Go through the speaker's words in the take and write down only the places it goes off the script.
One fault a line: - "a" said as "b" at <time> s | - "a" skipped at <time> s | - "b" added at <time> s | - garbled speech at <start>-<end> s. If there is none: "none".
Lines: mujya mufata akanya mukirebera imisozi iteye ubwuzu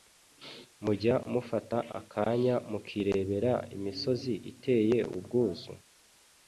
none